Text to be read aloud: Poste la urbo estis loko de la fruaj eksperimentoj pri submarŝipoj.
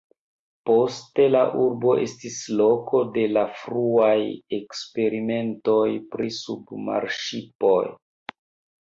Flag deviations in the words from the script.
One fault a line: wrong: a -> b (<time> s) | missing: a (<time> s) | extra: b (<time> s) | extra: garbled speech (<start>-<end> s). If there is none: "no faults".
no faults